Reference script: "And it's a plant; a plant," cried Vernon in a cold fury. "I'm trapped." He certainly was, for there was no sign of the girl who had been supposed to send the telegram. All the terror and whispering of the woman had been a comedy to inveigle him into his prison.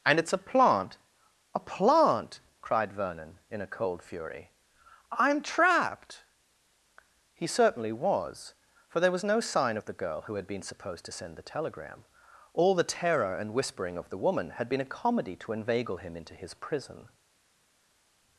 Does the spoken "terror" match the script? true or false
true